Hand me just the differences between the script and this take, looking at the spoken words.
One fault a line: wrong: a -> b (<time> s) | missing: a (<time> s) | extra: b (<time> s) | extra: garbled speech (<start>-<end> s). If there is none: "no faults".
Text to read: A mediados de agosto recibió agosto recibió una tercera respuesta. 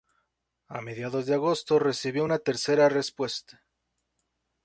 missing: agosto recibió (2.2 s)